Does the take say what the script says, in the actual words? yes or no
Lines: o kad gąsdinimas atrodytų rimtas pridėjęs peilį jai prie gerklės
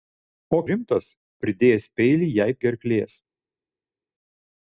no